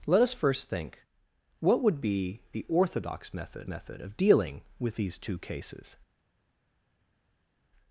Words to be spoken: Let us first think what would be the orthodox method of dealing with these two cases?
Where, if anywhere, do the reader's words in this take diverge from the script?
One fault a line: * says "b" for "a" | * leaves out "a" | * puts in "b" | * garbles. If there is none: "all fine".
* puts in "method"